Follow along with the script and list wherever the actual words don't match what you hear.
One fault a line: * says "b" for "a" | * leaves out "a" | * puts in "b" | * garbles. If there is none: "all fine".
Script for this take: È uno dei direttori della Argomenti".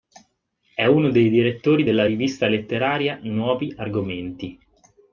* puts in "rivista letteraria Nuovi"